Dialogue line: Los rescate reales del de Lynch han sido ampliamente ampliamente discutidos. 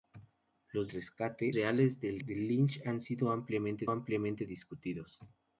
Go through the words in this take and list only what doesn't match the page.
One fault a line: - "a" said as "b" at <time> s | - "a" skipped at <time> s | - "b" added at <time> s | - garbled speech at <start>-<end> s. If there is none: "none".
none